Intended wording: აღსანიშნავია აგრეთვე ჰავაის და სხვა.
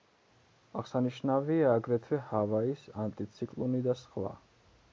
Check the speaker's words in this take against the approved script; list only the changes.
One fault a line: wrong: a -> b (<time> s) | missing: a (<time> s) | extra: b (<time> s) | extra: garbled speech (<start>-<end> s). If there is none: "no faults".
extra: ანტიციკლონი (3.0 s)